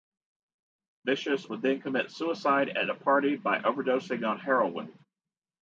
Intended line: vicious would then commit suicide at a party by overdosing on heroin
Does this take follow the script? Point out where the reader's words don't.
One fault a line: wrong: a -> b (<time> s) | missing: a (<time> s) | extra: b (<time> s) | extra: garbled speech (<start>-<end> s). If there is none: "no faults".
no faults